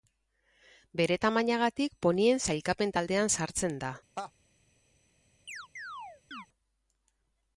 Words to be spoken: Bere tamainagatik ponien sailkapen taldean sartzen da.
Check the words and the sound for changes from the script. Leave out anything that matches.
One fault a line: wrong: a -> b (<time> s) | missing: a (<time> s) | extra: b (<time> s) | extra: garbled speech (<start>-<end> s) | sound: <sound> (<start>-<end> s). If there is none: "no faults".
sound: laugh (4.2-4.3 s)
sound: chirp (5.5-6.5 s)